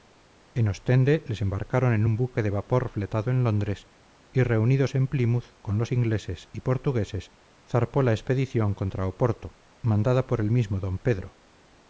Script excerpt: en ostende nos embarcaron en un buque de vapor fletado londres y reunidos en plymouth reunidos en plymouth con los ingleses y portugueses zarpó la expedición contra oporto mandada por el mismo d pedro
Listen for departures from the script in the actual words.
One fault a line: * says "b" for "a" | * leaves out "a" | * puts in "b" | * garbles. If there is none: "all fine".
* says "les" for "nos"
* puts in "en"
* leaves out "reunidos en plymouth"